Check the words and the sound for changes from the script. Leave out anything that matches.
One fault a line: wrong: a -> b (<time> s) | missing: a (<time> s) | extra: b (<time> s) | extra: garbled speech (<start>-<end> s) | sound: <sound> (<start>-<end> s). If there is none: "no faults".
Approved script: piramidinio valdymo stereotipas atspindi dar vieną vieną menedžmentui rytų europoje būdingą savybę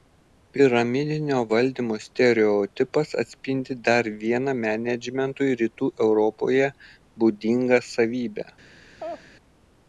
missing: vieną (4.5 s)
sound: laugh (9.0-9.3 s)